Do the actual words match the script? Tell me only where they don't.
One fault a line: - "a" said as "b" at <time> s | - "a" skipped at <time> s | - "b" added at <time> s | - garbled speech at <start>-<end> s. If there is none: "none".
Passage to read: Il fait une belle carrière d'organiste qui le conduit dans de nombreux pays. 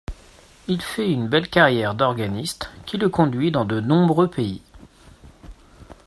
none